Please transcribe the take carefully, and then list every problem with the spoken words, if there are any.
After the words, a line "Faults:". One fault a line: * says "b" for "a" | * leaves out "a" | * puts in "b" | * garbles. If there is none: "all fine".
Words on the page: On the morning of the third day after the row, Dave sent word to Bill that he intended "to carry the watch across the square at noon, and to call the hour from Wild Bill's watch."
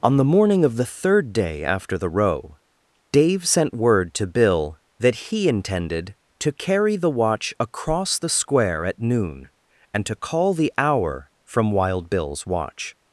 On the morning of the third day after the row, Dave sent word to Bill that he intended "to carry the watch across the square at noon, and to call the hour from Wild Bill's watch."
Faults:
all fine